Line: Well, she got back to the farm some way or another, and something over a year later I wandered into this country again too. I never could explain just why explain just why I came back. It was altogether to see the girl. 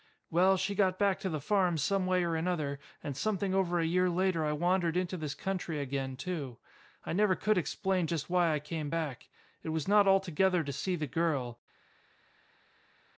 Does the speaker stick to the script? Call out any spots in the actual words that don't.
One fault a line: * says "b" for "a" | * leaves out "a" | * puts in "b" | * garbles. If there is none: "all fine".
* leaves out "explain just why"
* puts in "not"